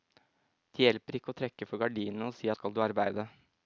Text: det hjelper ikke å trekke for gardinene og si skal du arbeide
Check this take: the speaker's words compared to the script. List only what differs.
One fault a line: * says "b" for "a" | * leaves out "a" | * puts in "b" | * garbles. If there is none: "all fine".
all fine